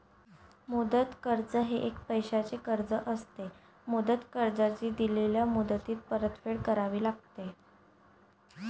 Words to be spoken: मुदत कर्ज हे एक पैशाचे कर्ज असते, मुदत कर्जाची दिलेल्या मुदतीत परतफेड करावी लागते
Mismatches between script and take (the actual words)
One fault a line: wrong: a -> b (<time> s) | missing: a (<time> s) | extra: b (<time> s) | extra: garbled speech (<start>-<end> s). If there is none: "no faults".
no faults